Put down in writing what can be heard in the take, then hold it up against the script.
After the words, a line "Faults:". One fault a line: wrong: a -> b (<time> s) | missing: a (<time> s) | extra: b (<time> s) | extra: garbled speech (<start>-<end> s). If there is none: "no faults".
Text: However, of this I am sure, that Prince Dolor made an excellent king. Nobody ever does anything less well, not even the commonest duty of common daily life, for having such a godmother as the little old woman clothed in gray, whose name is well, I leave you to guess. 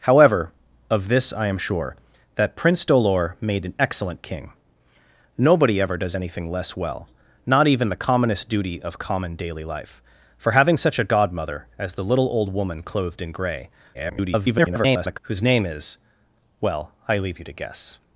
However, of this I am sure, that Prince Dolor made an excellent king. Nobody ever does anything less well, not even the commonest duty of common daily life, for having such a godmother as the little old woman clothed in gray, [garbled] whose name is well, I leave you to guess.
Faults:
extra: garbled speech (13.9-15.2 s)